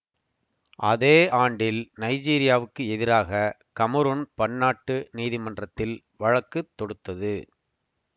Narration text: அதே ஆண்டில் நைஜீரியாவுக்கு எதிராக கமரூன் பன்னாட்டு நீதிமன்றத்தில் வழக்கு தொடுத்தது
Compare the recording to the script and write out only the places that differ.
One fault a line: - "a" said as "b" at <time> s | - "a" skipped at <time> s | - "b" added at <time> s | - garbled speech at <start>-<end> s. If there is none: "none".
none